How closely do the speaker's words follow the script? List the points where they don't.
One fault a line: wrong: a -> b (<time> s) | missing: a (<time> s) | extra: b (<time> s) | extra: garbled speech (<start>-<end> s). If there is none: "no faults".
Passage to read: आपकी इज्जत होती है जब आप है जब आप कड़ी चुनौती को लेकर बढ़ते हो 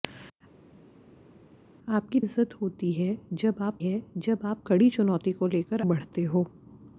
no faults